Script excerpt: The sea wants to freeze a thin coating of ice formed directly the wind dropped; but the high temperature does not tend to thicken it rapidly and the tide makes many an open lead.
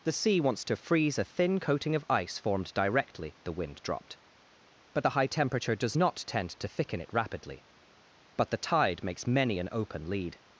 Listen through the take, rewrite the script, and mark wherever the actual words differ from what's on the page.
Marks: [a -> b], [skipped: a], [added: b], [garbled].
The sea wants to freeze a thin coating of ice formed directly the wind dropped; but the high temperature does not tend to thicken it rapidly [and -> but] the tide makes many an open lead.